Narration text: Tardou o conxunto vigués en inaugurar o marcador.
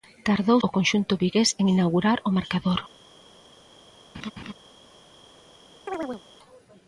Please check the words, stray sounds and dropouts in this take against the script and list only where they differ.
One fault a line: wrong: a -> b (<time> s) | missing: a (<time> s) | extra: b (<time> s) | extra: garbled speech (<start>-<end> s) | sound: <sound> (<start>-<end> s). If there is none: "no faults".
sound: laugh (4.1-4.5 s)
sound: chirp (5.9-6.2 s)